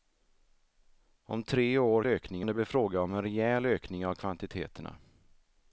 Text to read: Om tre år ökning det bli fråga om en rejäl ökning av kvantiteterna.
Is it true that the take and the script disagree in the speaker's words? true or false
false